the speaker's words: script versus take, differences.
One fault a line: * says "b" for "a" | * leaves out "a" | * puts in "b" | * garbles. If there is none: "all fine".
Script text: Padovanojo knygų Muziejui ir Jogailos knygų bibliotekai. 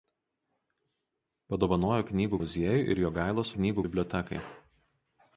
all fine